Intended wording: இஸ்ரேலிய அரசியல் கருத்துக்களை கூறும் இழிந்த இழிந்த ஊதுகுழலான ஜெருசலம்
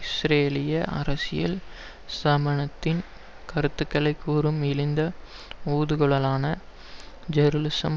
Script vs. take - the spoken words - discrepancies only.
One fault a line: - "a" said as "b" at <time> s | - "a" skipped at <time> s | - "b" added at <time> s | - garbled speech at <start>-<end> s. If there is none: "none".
- "ஸ்தாபனத்தின்" added at 2.1 s
- "இழிந்த" skipped at 5.0 s